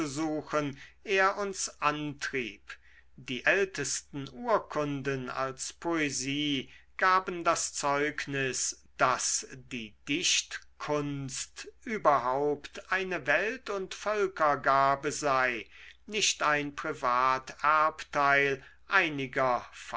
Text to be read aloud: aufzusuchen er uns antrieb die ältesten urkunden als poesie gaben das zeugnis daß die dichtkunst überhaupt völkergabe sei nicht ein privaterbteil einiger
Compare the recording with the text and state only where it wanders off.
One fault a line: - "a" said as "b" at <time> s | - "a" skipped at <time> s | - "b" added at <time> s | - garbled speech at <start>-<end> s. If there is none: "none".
- "eine welt und" added at 12.9 s